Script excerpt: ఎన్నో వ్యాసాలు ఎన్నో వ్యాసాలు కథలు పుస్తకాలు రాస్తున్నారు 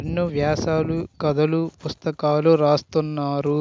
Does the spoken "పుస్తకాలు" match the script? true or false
true